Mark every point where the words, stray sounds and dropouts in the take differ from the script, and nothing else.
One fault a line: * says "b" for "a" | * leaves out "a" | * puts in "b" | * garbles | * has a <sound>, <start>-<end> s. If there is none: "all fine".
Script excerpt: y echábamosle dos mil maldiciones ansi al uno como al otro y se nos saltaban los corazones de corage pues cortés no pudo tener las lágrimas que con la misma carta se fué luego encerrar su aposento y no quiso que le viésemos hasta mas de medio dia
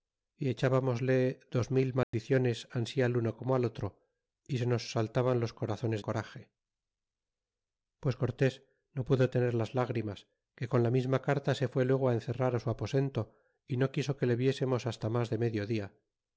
* has a dropout, 2.0-2.1 s
* leaves out "de"